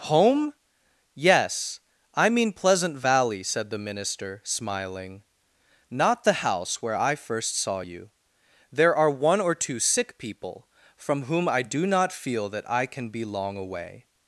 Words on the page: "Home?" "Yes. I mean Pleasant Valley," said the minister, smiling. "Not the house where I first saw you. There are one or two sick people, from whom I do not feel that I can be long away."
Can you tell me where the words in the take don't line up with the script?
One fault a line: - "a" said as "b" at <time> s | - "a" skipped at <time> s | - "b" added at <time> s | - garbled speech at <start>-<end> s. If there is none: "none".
none